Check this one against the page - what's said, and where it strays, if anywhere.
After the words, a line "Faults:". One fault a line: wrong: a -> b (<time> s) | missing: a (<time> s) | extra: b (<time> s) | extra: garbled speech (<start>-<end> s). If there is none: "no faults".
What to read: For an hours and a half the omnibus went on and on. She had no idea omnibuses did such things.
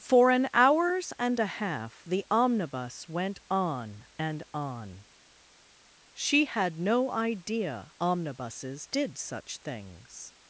For an hours and a half the omnibus went on and on. She had no idea omnibuses did such things.
Faults:
no faults